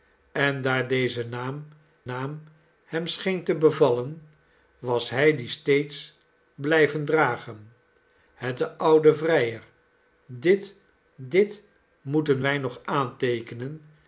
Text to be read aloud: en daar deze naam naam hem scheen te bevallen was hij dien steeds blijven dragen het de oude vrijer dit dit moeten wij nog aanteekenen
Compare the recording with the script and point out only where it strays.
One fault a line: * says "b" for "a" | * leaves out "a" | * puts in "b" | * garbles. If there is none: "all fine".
all fine